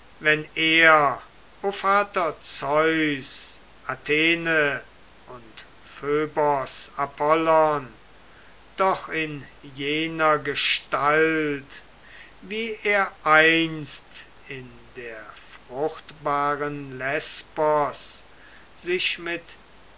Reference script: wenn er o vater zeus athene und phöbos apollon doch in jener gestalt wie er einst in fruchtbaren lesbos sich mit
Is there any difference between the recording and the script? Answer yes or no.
yes